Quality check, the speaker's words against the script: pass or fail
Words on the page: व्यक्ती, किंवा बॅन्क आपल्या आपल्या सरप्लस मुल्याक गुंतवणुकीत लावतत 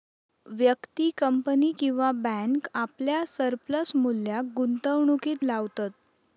fail